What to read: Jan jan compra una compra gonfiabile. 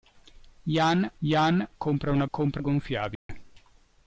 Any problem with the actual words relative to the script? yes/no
no